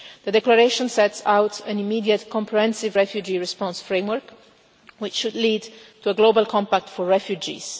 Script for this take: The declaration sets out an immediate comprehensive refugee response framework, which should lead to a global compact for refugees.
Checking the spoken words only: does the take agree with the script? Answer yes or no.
yes